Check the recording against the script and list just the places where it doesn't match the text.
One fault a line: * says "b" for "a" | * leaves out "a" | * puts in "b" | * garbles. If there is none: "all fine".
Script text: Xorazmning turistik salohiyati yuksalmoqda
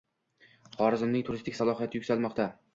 all fine